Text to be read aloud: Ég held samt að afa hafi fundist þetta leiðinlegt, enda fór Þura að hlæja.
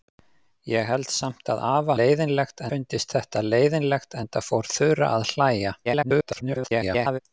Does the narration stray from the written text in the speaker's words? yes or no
yes